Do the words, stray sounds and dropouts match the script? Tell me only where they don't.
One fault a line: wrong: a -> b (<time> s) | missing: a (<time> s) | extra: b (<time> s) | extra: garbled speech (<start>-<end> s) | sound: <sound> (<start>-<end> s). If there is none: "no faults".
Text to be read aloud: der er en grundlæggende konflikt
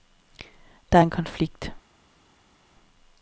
missing: grundlæggende (1.1 s)